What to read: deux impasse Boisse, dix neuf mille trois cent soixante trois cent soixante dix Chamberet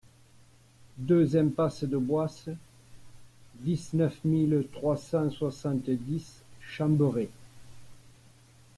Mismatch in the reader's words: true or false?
true